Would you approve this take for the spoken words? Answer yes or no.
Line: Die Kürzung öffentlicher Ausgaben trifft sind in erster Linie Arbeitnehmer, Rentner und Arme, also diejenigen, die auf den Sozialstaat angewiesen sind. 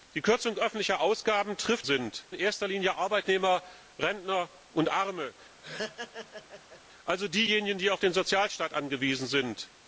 yes